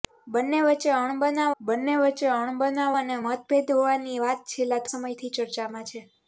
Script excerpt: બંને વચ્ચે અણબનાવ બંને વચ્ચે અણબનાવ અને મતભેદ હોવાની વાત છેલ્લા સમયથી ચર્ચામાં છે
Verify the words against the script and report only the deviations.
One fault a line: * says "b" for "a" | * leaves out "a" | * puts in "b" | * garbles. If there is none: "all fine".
all fine